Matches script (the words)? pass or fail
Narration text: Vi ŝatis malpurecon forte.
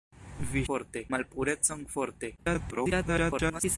fail